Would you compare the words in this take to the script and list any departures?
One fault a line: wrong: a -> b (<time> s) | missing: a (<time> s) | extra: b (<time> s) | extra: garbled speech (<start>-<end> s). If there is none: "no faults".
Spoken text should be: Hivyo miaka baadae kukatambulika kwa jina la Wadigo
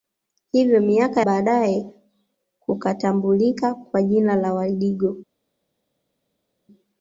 no faults